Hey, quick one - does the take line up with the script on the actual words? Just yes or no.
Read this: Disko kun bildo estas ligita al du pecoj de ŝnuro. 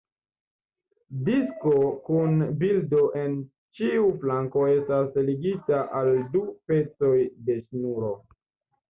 no